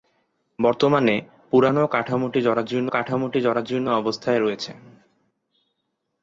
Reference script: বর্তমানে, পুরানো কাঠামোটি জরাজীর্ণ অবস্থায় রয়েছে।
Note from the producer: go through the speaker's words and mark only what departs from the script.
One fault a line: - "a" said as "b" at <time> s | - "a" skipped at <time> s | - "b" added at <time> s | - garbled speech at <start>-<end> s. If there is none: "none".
- "কাঠামোটি জরাজীর্ণ" added at 2.9 s